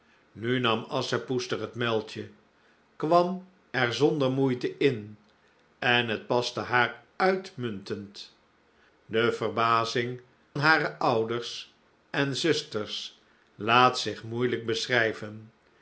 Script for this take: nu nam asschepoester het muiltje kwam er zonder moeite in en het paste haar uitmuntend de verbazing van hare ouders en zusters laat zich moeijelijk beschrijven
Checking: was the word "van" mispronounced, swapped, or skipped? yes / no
yes